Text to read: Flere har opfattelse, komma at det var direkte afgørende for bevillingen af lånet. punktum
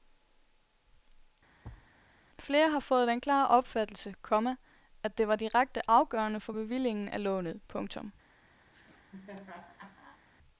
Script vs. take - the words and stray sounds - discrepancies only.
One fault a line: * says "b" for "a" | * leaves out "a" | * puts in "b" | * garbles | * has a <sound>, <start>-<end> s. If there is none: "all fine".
* has a thud, 1.6-1.9 s
* puts in "fået den klare"
* has a laugh, 8.7-10.2 s